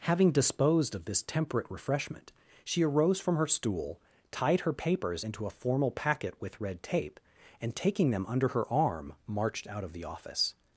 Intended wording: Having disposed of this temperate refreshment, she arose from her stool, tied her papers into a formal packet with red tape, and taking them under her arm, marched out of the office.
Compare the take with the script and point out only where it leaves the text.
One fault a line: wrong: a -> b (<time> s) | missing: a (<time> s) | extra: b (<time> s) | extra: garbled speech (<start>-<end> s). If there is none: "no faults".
no faults